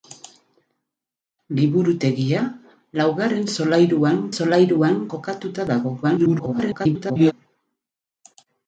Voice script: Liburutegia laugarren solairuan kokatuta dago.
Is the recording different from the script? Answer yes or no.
yes